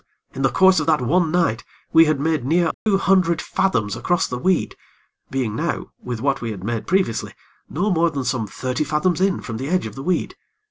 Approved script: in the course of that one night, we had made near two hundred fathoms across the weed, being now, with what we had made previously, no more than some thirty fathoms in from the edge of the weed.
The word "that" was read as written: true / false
true